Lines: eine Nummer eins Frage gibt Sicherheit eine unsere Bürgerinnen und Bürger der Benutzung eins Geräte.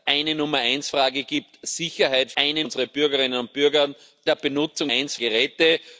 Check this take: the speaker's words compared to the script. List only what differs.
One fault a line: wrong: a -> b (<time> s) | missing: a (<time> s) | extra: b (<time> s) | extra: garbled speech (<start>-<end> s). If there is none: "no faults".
no faults